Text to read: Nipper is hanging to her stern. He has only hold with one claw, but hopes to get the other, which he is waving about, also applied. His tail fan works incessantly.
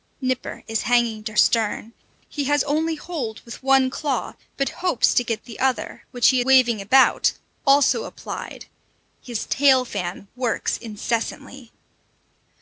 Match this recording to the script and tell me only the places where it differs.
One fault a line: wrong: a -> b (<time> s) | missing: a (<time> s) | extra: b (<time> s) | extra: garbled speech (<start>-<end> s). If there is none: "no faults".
missing: her (1.3 s)
missing: is (6.4 s)